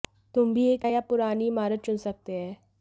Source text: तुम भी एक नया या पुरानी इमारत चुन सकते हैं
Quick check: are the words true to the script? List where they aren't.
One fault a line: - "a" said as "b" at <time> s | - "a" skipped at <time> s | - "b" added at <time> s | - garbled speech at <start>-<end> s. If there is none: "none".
- "नया" skipped at 0.9 s